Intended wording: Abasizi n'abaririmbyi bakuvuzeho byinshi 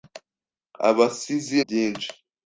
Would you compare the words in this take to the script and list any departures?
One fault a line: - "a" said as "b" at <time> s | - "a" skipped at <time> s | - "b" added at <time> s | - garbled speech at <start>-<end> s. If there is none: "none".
- "n'abaririmbyi bakuvuzeho" skipped at 1.6 s